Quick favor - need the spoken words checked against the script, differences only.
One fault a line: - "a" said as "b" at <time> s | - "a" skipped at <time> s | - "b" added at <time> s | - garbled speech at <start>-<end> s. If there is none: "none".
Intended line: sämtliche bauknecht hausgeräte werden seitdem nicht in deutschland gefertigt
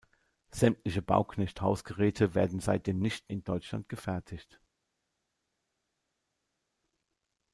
none